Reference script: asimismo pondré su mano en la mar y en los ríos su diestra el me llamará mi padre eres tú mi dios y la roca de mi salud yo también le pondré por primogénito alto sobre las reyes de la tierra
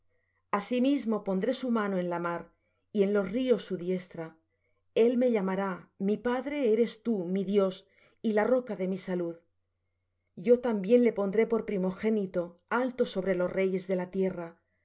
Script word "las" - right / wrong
wrong